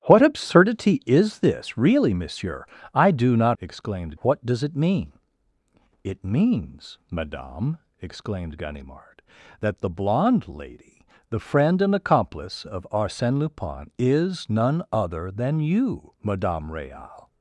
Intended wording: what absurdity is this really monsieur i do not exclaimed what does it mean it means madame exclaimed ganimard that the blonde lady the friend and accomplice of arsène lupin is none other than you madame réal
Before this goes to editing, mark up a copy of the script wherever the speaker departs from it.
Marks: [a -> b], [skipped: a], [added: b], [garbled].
what absurdity is this really monsieur i do not exclaimed what does it mean it means madame exclaimed ganimard that the blonde lady the friend and accomplice of arsène lupin is none other than you madame réal